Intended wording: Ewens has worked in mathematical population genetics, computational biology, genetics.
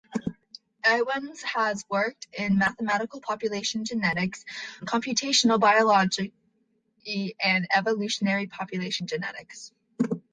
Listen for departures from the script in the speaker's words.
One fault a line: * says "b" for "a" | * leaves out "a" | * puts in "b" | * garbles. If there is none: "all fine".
* puts in "and evolutionary population"